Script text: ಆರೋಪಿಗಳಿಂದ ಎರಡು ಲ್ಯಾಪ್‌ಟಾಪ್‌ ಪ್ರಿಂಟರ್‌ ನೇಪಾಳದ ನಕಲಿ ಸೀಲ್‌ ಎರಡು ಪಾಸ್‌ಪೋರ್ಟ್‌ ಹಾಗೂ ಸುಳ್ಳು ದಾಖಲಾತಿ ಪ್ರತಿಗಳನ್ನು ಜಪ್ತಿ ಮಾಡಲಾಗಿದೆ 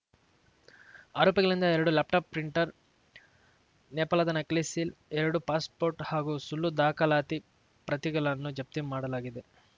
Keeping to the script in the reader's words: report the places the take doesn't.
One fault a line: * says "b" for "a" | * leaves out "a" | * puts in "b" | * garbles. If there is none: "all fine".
all fine